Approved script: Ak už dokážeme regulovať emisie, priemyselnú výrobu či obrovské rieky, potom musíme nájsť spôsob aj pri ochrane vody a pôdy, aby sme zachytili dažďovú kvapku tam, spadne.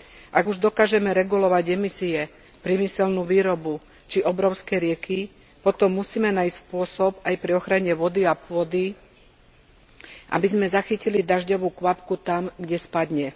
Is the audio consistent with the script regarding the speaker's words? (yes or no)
no